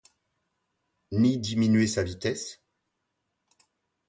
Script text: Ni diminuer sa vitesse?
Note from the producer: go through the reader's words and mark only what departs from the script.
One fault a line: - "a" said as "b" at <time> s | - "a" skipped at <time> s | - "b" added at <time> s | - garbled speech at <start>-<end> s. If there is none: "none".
none